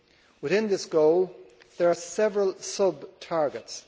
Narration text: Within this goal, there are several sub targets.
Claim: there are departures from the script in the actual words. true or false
false